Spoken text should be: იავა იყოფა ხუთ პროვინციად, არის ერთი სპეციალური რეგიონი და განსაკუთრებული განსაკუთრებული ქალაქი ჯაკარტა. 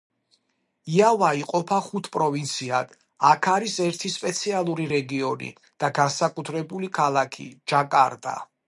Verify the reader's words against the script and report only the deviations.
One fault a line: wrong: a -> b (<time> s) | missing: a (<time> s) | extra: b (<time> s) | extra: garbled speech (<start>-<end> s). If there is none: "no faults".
extra: აქ (3.3 s)
missing: განსაკუთრებული (7.0 s)